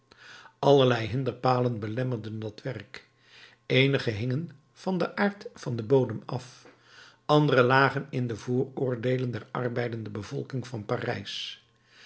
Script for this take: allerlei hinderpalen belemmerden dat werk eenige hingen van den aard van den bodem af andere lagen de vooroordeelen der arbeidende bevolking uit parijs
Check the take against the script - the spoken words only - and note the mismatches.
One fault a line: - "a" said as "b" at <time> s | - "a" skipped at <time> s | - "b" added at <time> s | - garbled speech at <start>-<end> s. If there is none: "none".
- "in" added at 8.1 s
- "uit" said as "van" at 10.7 s